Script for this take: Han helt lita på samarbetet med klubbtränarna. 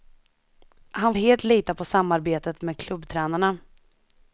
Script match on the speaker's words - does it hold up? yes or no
yes